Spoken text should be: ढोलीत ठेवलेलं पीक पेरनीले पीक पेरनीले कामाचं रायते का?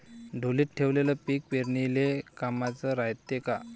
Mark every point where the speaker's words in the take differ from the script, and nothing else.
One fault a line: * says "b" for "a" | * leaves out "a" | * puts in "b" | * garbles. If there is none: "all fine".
* leaves out "पीक पेरनीले"